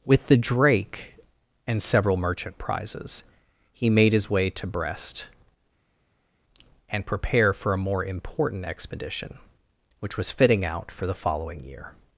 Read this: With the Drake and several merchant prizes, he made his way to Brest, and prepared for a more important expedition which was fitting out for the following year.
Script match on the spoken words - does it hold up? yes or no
no